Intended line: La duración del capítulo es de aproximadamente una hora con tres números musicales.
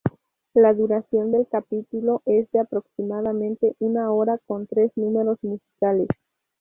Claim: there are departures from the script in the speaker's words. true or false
false